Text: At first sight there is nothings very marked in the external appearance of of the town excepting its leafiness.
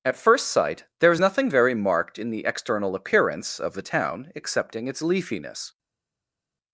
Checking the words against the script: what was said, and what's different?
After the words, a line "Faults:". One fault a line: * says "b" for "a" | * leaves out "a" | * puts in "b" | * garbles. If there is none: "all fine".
At first sight there is nothing very marked in the external appearance of the town excepting its leafiness.
Faults:
* says "nothing" for "nothings"
* leaves out "of"